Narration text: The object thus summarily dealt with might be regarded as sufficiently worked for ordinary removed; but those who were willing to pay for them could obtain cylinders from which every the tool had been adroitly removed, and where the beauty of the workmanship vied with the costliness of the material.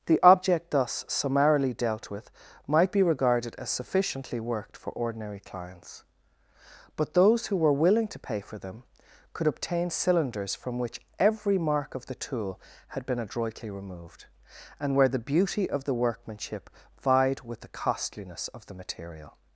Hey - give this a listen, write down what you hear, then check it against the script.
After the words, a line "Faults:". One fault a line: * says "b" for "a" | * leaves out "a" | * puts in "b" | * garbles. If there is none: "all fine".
The object thus summarily dealt with might be regarded as sufficiently worked for ordinary clients; but those who were willing to pay for them could obtain cylinders from which every mark of the tool had been adroitly removed, and where the beauty of the workmanship vied with the costliness of the material.
Faults:
* says "clients" for "removed"
* puts in "mark of"